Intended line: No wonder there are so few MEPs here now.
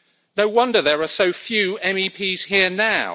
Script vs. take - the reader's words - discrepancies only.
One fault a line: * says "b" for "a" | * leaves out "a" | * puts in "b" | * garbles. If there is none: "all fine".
all fine